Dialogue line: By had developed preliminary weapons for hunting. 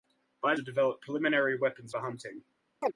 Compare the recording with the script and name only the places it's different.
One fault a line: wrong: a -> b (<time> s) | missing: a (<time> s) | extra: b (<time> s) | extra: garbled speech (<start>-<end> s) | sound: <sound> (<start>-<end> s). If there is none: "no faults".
sound: chirp (2.8-2.9 s)